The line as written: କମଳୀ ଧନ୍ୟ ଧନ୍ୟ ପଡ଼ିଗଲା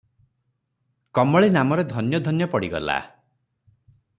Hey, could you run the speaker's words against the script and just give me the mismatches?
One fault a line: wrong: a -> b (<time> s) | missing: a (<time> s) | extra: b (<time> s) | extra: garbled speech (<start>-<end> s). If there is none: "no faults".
extra: ନାମରେ (1.5 s)